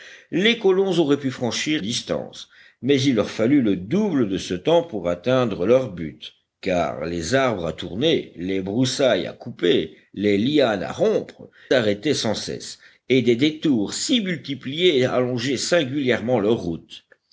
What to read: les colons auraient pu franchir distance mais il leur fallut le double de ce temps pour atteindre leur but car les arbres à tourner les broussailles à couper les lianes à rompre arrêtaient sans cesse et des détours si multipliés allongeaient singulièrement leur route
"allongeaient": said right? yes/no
yes